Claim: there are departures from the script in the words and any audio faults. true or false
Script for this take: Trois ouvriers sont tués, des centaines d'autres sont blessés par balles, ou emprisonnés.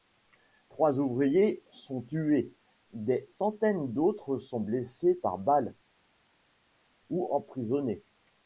false